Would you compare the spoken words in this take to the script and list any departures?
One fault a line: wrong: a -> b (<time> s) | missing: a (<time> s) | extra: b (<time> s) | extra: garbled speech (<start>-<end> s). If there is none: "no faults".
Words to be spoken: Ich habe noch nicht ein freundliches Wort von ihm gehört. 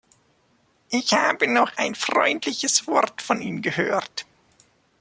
missing: nicht (1.8 s)